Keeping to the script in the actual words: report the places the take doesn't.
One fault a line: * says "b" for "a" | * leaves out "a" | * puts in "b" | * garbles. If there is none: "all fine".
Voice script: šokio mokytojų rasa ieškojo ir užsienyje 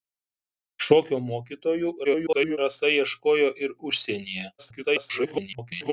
* garbles
* garbles